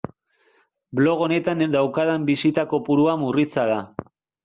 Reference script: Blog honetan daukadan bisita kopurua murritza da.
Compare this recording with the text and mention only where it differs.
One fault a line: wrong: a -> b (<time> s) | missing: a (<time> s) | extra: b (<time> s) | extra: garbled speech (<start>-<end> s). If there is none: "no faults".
no faults